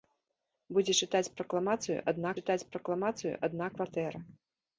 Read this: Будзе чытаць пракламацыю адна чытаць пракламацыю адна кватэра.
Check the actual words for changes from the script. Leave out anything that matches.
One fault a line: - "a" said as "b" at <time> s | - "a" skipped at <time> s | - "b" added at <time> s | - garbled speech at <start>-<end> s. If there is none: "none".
none